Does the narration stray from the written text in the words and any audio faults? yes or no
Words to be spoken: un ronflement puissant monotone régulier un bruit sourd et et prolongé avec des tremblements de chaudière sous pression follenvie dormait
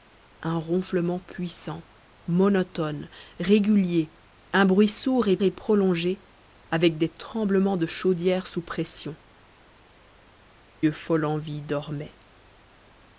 no